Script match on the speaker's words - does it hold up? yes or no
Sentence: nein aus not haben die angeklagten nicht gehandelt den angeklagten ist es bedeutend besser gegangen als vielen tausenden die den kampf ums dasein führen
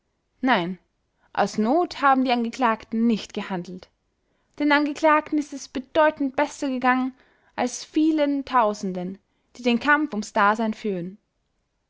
yes